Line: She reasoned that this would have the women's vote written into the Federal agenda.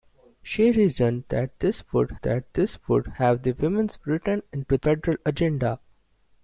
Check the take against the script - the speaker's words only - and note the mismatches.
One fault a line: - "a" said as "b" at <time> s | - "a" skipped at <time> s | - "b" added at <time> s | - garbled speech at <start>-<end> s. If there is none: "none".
- "that this would" added at 2.2 s
- "vote" skipped at 4.0 s
- "the" skipped at 4.8 s